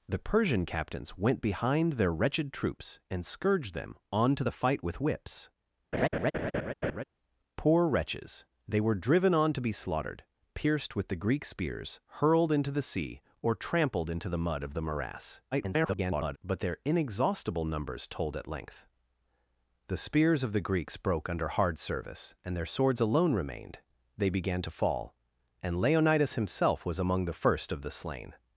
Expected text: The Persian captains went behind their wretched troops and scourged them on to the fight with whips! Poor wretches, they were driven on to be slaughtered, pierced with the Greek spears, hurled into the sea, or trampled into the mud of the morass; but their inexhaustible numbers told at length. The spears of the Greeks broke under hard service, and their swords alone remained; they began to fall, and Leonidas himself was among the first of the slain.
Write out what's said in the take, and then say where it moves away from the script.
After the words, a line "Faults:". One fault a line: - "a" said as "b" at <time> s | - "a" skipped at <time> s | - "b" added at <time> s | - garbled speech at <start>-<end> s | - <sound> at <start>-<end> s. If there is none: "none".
The Persian captains went behind their wretched troops and scourged them on to the fight with whips! Poor wretches, they were driven on to be slaughtered, pierced with the Greek spears, hurled into the sea, or trampled into the mud of the morass; [garbled] but their inexhaustible numbers told at length. The spears of the Greeks broke under hard service, and their swords alone remained; they began to fall, and Leonidas himself was among the first of the slain.
Faults:
- laugh at 5.9-7.0 s
- garbled speech at 15.5-16.4 s